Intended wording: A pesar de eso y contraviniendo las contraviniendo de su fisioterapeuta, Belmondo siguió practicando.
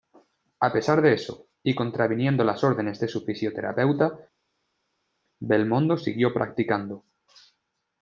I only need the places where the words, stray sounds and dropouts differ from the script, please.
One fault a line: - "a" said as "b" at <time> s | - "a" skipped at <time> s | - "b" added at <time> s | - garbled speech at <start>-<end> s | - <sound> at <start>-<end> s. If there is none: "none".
- "contraviniendo" said as "órdenes" at 2.6 s